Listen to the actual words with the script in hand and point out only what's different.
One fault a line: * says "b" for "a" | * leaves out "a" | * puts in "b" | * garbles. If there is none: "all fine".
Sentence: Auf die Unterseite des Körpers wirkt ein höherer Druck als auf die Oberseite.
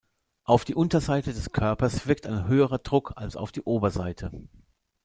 all fine